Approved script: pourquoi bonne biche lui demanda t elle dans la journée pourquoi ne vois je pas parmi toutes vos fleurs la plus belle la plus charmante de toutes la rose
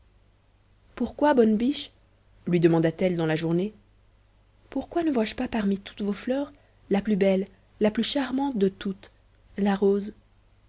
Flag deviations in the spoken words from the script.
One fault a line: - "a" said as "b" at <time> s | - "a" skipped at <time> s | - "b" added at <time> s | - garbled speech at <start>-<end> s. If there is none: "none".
none